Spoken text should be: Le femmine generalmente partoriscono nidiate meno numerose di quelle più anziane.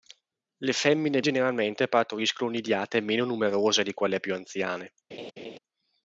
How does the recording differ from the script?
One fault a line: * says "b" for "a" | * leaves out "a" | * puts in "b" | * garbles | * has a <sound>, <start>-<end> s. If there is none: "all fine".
* has a laugh, 5.1-5.6 s